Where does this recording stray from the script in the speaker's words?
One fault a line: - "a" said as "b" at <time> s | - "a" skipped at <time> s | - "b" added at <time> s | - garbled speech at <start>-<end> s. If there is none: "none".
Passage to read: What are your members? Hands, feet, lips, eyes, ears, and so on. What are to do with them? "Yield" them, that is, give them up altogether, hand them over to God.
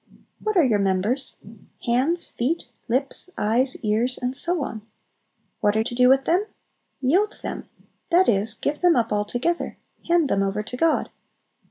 none